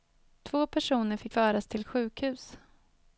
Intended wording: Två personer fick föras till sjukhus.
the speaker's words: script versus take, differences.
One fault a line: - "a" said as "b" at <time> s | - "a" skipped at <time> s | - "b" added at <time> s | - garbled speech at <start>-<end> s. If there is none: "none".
none